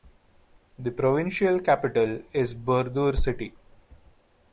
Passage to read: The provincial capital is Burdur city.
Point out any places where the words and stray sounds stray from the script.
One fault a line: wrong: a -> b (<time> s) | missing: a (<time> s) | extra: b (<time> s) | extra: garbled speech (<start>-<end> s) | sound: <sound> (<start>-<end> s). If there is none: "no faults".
no faults